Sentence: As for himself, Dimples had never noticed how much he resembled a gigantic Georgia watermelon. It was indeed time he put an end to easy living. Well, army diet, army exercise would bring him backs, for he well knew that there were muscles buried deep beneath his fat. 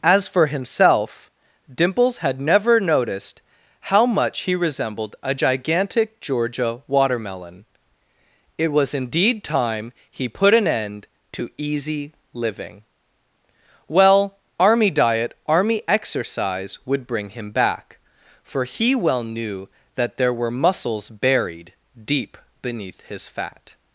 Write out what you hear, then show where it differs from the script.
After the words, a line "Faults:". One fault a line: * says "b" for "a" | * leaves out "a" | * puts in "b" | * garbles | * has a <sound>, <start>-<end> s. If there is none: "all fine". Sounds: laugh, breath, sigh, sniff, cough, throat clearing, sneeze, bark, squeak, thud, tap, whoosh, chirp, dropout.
As for himself, Dimples had never noticed how much he resembled a gigantic Georgia watermelon. It was indeed time he put an end to easy living. Well, army diet, army exercise would bring him back, for he well knew that there were muscles buried deep beneath his fat.
Faults:
* says "back" for "backs"